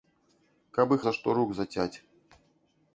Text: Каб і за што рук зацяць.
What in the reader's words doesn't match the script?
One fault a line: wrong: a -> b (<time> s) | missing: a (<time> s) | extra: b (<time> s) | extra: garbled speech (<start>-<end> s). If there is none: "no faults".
no faults